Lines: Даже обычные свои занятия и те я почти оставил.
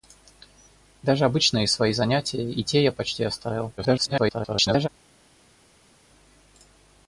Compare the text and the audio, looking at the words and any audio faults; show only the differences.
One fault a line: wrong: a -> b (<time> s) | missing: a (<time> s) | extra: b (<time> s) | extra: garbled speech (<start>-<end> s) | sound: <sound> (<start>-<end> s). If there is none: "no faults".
extra: garbled speech (3.8-4.9 s)